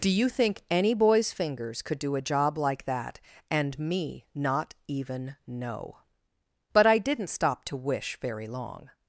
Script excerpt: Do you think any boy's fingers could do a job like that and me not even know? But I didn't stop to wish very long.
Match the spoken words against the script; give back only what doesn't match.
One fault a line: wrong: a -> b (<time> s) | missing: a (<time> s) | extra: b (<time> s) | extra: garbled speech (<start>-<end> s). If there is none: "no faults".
no faults